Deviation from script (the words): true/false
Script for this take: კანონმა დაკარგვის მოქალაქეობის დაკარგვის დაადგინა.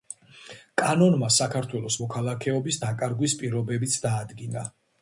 true